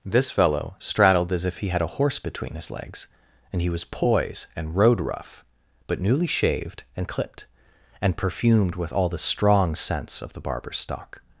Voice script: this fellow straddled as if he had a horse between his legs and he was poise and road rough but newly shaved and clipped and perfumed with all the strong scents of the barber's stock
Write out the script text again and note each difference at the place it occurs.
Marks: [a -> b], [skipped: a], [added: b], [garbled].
this fellow straddled as if he had a horse between his legs and he was poise and road rough but newly shaved and clipped and perfumed with all the strong scents of the barber's stock